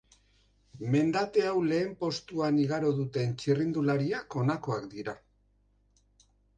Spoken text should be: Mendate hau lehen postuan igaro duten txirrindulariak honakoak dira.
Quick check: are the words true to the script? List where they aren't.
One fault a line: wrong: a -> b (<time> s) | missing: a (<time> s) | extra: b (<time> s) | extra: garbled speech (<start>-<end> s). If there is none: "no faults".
no faults